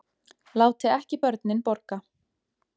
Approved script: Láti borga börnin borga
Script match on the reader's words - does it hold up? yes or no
no